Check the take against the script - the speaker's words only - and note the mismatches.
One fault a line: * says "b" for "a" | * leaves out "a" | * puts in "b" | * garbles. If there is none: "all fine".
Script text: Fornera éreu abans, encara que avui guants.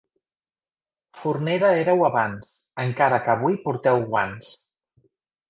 * puts in "porteu"